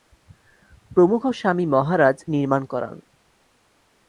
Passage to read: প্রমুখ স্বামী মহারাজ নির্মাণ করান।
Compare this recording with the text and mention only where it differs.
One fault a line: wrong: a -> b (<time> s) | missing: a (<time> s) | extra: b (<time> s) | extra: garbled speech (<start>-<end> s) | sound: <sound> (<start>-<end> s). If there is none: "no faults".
no faults